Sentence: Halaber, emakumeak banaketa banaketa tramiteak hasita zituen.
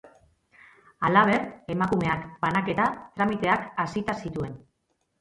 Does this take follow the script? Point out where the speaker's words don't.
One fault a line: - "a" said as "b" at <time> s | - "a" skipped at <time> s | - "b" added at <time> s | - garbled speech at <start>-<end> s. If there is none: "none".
- "banaketa" skipped at 2.8 s